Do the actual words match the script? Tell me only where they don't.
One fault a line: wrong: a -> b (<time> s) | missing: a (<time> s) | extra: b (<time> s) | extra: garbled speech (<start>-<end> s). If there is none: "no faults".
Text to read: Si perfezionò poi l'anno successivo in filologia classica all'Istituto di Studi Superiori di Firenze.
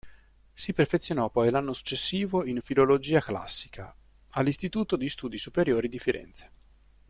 no faults